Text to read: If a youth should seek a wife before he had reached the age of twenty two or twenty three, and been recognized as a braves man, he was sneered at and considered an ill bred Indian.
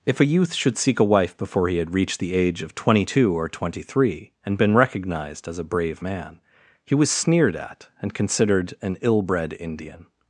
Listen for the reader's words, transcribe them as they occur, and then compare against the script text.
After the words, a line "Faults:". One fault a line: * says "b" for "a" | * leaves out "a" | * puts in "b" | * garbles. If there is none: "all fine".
If a youth should seek a wife before he had reached the age of twenty two or twenty three, and been recognized as a brave man, he was sneered at and considered an ill bred Indian.
Faults:
* says "brave" for "braves"